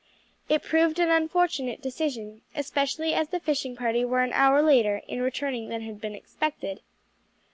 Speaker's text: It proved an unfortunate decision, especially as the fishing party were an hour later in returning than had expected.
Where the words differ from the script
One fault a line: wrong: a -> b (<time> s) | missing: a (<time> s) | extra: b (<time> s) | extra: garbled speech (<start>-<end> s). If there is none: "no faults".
extra: been (6.0 s)